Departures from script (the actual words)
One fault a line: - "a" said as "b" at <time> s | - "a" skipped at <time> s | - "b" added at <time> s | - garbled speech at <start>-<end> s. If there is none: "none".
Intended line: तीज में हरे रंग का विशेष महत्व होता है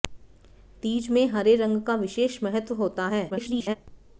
- garbled speech at 3.3-3.8 s